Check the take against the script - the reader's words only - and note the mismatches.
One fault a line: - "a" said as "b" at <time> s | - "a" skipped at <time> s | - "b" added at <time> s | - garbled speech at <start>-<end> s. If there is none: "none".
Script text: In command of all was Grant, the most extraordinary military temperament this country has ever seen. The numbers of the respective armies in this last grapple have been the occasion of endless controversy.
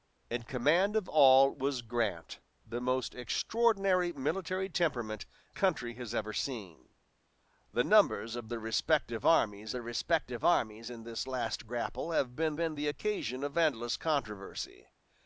- "this" skipped at 5.3 s
- "the respective armies" added at 9.7 s
- "been" added at 12.6 s